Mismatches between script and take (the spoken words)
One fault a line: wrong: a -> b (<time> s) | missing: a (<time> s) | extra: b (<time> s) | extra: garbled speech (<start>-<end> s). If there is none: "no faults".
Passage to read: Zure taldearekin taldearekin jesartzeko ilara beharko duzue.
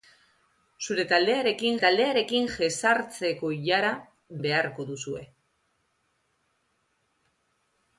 no faults